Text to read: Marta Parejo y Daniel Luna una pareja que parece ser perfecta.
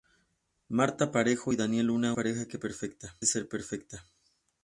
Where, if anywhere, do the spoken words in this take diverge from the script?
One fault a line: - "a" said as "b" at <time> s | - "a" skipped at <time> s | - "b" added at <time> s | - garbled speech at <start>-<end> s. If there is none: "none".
- "una" skipped at 2.1 s
- "parece" said as "perfecta" at 2.6 s